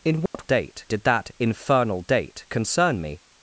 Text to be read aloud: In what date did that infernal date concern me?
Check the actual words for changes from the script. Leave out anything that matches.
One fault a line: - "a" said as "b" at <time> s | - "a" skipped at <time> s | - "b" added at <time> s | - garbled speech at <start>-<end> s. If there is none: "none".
none